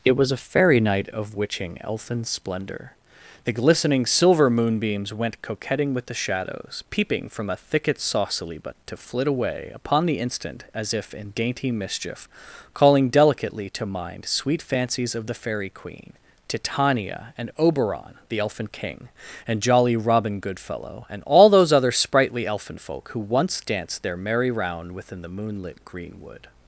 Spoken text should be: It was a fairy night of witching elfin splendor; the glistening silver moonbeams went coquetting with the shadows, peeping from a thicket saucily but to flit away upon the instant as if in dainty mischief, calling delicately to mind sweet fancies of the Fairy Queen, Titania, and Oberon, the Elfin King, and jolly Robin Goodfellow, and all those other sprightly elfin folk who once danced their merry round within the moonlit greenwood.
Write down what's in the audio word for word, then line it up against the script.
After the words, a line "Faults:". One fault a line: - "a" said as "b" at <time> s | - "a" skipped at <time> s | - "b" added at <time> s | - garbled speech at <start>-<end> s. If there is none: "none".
It was a fairy night of witching elfin splendor; the glistening silver moonbeams went coquetting with the shadows, peeping from a thicket saucily but to flit away upon the instant as if in dainty mischief, calling delicately to mind sweet fancies of the Fairy Queen, Titania, and Oberon, the Elfin King, and jolly Robin Goodfellow, and all those other sprightly elfin folk who once danced their merry round within the moonlit greenwood.
Faults:
none